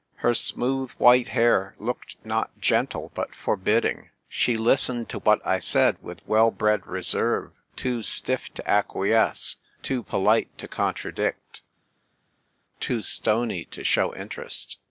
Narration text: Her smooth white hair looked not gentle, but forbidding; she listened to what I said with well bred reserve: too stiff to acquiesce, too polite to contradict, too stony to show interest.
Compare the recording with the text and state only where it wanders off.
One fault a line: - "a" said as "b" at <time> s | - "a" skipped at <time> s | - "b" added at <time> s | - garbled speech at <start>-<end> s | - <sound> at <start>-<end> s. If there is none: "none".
none